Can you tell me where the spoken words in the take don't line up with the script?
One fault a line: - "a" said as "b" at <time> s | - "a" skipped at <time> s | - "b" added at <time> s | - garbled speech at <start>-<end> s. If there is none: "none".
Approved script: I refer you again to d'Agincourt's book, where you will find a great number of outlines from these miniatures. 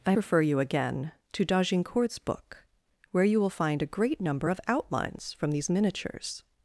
none